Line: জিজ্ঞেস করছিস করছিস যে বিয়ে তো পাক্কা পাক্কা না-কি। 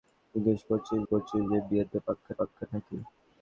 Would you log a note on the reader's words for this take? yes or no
no